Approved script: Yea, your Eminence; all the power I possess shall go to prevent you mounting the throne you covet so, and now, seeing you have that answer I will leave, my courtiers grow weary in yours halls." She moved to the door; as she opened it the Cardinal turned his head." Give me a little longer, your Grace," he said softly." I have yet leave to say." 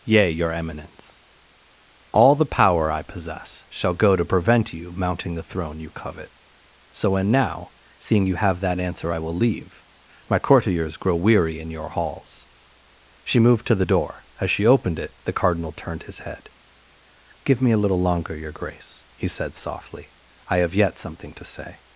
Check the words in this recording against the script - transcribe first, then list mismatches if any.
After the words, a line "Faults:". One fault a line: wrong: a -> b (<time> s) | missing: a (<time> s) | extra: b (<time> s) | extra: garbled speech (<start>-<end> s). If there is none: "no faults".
Yea, your Eminence; all the power I possess shall go to prevent you mounting the throne you covet so, and now, seeing you have that answer I will leave, my courtiers grow weary in your halls." She moved to the door; as she opened it the Cardinal turned his head." Give me a little longer, your Grace," he said softly." I have yet something to say."
Faults:
wrong: yours -> your (11.7 s)
wrong: leave -> something (21.0 s)